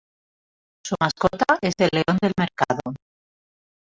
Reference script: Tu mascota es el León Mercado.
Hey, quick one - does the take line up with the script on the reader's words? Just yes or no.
no